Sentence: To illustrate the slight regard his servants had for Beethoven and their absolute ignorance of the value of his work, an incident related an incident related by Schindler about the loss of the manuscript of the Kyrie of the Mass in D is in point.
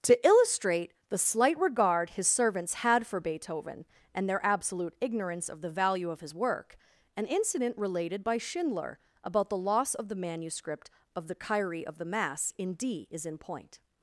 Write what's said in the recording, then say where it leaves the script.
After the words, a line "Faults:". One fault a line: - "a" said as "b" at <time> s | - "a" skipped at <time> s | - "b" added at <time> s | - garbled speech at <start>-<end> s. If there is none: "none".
To illustrate the slight regard his servants had for Beethoven and their absolute ignorance of the value of his work, an incident related by Schindler about the loss of the manuscript of the Kyrie of the Mass in D is in point.
Faults:
- "an incident related" skipped at 8.2 s